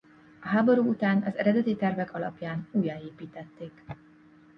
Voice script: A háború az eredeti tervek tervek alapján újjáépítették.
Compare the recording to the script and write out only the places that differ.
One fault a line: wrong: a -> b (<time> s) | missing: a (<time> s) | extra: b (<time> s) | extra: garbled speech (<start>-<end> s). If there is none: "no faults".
extra: után (0.9 s)
missing: tervek (2.1 s)